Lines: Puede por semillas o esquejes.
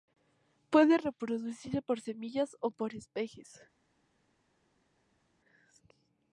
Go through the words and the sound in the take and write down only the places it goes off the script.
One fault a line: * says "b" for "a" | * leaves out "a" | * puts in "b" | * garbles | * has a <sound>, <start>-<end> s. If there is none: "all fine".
* puts in "reproducirse"
* puts in "por"